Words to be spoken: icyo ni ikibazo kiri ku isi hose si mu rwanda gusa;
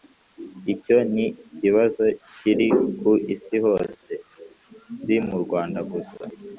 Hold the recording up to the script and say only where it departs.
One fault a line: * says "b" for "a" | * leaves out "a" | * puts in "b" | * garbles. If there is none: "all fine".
all fine